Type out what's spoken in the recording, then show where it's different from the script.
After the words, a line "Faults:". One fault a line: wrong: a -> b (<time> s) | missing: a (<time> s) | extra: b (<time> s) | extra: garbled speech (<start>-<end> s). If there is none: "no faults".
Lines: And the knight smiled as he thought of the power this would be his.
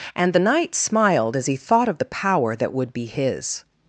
And the knight smiled as he thought of the power that would be his.
Faults:
wrong: this -> that (2.5 s)